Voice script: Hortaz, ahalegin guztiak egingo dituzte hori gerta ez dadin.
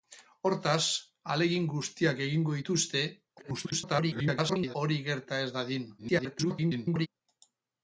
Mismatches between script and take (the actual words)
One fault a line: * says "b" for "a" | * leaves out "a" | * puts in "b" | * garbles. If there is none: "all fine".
* garbles
* garbles